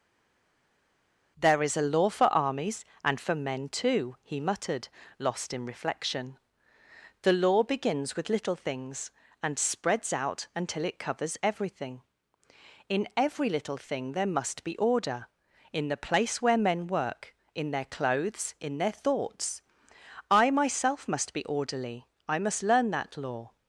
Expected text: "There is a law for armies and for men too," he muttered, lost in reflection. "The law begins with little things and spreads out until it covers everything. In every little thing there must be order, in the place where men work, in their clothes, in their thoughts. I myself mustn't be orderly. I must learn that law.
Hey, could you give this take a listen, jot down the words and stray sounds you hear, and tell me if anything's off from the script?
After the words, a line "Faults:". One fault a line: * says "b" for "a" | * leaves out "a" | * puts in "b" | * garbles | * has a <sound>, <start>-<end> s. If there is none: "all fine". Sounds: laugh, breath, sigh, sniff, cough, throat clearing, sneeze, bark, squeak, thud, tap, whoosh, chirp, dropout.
"There is a law for armies and for men too," he muttered, lost in reflection. "The law begins with little things and spreads out until it covers everything. In every little thing there must be order, in the place where men work, in their clothes, in their thoughts. I myself must be orderly. I must learn that law.
Faults:
* says "must" for "mustn't"